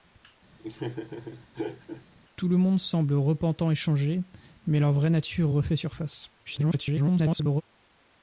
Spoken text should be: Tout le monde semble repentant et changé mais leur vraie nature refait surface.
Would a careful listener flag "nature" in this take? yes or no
no